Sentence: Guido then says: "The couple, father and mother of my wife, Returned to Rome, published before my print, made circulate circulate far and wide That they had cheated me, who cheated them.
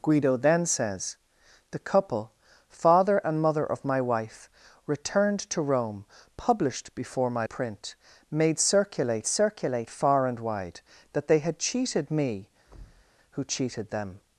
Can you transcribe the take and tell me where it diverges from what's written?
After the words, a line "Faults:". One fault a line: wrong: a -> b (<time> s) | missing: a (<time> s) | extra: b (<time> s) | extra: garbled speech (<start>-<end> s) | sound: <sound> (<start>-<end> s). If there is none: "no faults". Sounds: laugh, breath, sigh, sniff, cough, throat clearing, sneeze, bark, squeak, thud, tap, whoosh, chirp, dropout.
Guido then says: "The couple, father and mother of my wife, Returned to Rome, published before my print, made circulate circulate far and wide That they had cheated me, who cheated them.
Faults:
sound: thud (12.7-13.1 s)